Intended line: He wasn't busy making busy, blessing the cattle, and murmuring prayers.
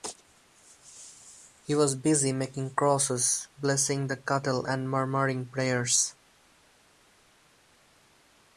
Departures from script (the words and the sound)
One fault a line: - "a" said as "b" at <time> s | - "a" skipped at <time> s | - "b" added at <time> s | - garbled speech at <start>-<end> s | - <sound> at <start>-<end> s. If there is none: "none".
- "wasn't" said as "was" at 1.8 s
- "busy" said as "crosses" at 2.7 s